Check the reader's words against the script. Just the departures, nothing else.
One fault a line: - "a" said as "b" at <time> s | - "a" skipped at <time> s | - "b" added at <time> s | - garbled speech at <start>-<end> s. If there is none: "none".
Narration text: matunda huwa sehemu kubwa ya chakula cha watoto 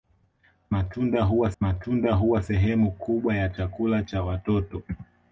- "matunda huwa" added at 1.6 s